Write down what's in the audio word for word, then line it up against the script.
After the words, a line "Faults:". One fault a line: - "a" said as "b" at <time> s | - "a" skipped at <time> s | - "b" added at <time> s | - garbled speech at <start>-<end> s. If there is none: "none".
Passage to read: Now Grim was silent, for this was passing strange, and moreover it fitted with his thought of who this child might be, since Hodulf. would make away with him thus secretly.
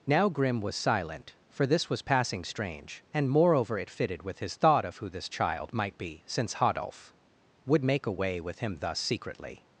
Now Grim was silent, for this was passing strange, and moreover it fitted with his thought of who this child might be, since Hodulf. would make away with him thus secretly.
Faults:
none